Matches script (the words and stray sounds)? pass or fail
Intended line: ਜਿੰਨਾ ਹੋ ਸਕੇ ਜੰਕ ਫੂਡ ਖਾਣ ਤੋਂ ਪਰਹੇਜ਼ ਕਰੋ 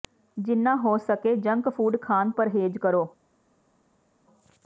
fail